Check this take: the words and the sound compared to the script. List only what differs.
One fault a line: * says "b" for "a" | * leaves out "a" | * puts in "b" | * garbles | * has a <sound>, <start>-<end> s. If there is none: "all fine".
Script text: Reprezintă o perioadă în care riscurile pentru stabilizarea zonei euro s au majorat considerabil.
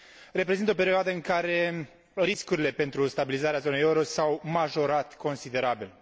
all fine